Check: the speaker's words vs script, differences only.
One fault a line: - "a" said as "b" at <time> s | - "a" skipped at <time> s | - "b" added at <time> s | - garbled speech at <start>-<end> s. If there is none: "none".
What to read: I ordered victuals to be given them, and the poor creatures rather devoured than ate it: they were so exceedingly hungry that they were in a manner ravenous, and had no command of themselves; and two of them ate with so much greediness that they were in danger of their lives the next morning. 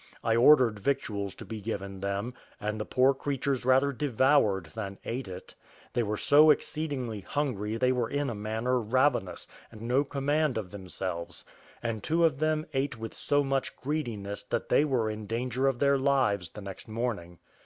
- "that" skipped at 7.8 s
- "had" skipped at 9.8 s